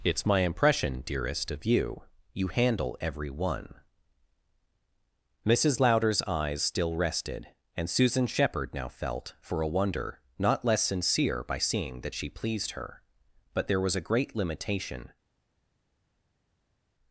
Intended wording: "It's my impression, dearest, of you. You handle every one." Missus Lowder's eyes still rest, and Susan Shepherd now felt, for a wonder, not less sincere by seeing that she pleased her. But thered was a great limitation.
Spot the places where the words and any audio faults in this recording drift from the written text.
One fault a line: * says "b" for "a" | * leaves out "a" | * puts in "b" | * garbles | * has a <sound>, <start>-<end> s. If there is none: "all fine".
* says "rested" for "rest"
* says "there" for "thered"